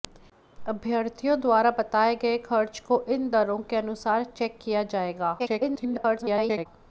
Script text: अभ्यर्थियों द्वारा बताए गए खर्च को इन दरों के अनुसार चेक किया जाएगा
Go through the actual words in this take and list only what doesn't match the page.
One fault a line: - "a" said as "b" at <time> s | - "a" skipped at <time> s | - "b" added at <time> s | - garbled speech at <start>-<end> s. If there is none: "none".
- garbled speech at 5.4-6.7 s